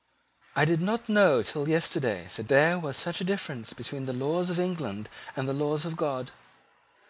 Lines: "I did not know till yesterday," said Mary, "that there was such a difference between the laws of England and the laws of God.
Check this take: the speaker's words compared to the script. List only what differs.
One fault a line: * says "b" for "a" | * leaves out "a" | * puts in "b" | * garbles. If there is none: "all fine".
* leaves out "Mary that"